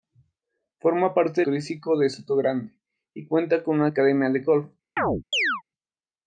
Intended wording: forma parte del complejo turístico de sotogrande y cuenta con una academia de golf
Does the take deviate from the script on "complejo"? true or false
true